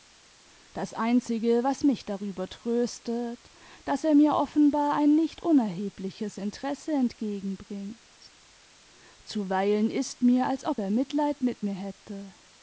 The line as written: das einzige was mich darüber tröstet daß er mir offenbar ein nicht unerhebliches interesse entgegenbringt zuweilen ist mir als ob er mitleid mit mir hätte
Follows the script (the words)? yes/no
yes